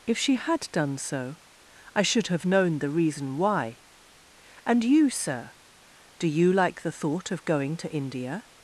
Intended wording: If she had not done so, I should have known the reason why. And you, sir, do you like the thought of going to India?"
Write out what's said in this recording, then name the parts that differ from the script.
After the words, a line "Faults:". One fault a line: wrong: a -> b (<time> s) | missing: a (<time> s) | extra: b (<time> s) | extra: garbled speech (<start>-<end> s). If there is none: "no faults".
If she had done so, I should have known the reason why. And you, sir, do you like the thought of going to India?"
Faults:
missing: not (0.7 s)